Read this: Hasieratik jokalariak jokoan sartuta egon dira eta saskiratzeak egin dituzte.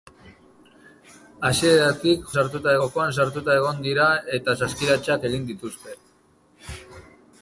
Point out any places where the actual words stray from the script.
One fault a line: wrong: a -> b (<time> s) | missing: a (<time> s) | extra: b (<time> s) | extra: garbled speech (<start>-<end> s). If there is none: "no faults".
wrong: jokalariak -> sartuta (2.4 s)